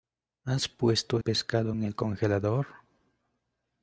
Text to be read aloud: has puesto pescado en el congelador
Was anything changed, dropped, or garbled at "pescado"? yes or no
no